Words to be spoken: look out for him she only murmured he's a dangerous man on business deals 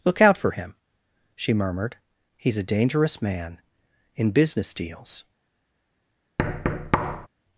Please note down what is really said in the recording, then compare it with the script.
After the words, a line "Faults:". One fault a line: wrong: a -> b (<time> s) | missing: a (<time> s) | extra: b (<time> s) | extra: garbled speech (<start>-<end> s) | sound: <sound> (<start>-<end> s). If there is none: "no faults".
look out for him she murmured he's a dangerous man in business deals
Faults:
missing: only (1.5 s)
wrong: on -> in (4.2 s)
sound: thud (6.4-7.3 s)